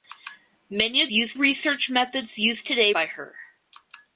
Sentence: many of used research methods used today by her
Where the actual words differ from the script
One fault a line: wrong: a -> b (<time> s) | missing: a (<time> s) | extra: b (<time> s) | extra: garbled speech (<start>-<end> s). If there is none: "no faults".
no faults